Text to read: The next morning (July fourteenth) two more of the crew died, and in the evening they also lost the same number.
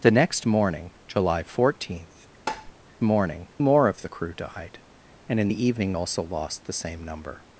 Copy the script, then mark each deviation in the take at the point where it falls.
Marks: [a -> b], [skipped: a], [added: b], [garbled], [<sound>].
The next morning (July fourteenth) [tap] [two -> morning] more of the crew died, and in the evening [skipped: they] also lost the same number.